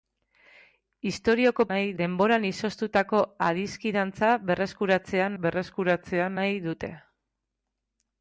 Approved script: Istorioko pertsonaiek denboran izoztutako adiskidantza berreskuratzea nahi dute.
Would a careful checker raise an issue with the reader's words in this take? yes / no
yes